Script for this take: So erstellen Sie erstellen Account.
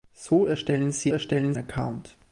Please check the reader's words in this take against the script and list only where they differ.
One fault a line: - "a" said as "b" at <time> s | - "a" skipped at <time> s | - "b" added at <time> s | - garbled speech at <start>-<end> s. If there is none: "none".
none